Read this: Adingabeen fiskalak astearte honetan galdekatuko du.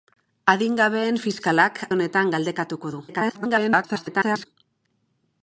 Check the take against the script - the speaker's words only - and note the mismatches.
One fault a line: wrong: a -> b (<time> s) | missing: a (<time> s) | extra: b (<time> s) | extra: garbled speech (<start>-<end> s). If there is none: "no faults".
missing: astearte (1.8 s)
extra: garbled speech (3.1-4.5 s)